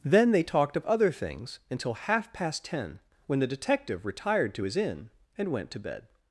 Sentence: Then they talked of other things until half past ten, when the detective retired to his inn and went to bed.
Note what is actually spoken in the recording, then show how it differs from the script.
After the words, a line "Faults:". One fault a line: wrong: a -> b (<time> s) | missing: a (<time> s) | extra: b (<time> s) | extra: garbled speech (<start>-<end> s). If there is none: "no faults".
Then they talked of other things until half past ten, when the detective retired to his inn and went to bed.
Faults:
no faults